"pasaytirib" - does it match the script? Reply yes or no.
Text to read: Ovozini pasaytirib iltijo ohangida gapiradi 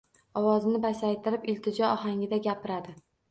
yes